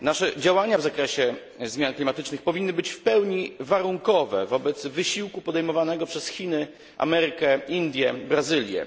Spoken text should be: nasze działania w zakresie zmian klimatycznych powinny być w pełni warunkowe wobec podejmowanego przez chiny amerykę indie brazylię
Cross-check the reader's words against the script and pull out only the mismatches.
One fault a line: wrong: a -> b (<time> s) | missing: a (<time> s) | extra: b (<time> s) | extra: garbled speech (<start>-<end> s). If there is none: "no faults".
extra: wysiłku (4.9 s)